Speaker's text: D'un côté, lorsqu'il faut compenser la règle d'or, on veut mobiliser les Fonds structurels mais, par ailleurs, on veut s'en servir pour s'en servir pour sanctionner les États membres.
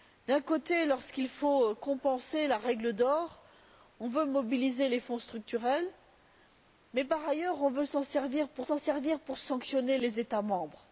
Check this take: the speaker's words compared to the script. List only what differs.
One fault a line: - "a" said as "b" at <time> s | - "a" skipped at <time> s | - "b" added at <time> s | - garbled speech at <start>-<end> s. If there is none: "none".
none